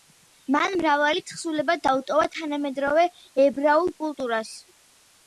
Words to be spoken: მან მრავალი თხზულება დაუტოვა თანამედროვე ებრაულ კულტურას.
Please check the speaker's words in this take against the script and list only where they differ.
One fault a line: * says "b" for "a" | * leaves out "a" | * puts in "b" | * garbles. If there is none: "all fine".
all fine